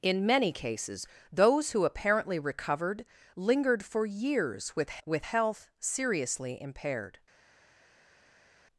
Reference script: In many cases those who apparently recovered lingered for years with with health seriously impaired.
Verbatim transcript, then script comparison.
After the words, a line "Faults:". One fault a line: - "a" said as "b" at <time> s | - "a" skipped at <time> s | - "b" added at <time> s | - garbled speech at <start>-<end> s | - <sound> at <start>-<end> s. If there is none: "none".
In many cases those who apparently recovered lingered for years with with health seriously impaired.
Faults:
none